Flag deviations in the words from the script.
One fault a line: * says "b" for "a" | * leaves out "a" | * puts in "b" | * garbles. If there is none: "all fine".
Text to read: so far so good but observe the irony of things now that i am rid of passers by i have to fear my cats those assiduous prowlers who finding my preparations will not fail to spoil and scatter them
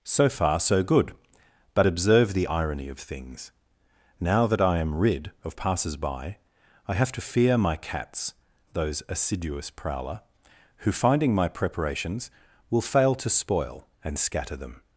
* says "prowler" for "prowlers"
* leaves out "not"